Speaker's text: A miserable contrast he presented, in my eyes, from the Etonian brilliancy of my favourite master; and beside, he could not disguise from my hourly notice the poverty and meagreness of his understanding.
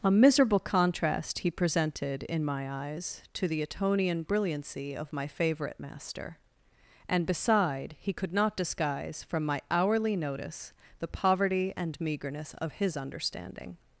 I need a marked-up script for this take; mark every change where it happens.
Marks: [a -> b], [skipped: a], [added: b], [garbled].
A miserable contrast he presented, in my eyes, [from -> to] the Etonian brilliancy of my favourite master; and beside, he could not disguise from my hourly notice the poverty and meagreness of his understanding.